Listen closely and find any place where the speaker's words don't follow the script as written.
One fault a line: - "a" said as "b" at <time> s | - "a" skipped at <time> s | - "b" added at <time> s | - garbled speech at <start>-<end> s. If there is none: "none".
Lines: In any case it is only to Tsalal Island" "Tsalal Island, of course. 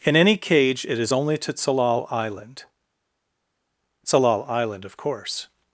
- "case" said as "cage" at 0.3 s